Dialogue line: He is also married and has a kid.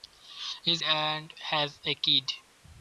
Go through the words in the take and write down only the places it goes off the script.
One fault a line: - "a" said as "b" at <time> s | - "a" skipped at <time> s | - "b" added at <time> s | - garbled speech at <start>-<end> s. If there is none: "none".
- "also married" skipped at 0.8 s